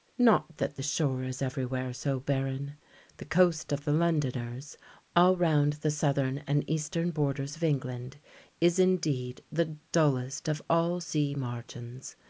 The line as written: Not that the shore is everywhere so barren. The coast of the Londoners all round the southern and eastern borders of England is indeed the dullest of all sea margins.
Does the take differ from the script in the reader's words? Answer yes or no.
no